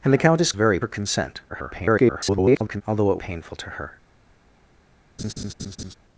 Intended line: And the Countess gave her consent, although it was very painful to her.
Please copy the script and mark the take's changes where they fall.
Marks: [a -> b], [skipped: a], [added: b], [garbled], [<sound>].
And the Countess [gave -> very] her consent, [garbled] although it [skipped: was very] painful to her. [laugh]